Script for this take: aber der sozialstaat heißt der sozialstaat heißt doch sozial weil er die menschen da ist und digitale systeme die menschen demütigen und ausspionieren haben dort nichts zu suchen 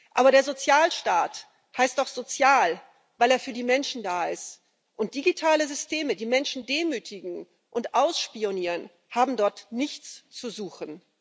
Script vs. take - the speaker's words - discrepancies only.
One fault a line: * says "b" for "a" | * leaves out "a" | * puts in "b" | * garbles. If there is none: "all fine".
* leaves out "der sozialstaat heißt"
* puts in "für"